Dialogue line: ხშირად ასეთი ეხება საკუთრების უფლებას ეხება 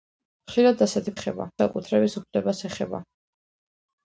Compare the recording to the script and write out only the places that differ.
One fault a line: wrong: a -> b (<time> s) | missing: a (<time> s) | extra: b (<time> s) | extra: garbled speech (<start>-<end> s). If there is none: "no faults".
no faults